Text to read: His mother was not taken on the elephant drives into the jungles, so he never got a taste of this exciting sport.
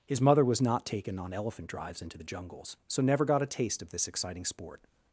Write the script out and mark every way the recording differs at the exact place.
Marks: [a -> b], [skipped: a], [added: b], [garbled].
His mother was not taken on [skipped: the] elephant drives into the jungles, so [skipped: he] never got a taste of this exciting sport.